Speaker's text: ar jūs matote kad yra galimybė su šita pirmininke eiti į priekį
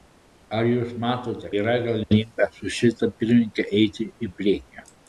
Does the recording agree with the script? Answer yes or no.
no